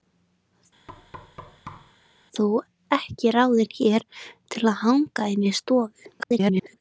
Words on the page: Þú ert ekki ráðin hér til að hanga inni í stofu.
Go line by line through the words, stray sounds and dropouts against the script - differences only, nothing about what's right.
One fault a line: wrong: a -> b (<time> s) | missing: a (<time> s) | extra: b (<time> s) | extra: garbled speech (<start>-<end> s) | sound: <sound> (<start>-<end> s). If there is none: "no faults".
sound: thud (0.9-2.0 s)
missing: ert (2.4 s)
extra: garbled speech (6.2-6.8 s)